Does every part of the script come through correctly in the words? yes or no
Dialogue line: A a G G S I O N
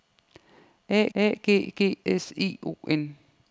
yes